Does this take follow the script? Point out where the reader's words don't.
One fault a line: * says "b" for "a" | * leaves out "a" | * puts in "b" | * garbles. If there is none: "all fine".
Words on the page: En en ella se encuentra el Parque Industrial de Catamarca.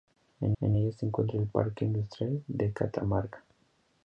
all fine